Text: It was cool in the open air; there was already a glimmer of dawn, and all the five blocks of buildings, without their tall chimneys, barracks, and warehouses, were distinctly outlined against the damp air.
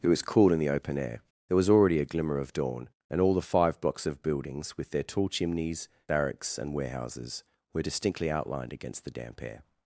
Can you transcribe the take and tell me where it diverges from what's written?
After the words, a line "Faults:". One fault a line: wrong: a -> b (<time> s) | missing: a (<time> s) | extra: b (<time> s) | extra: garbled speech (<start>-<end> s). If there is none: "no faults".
It was cool in the open air; there was already a glimmer of dawn, and all the five blocks of buildings, with their tall chimneys, barracks, and warehouses, were distinctly outlined against the damp air.
Faults:
wrong: without -> with (4.8 s)